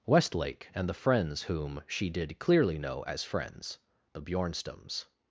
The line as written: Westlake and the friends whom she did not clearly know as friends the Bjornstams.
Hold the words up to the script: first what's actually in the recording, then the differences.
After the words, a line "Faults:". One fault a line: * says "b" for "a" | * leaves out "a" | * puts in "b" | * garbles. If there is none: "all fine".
Westlake and the friends whom she did clearly know as friends the Bjornstams.
Faults:
* leaves out "not"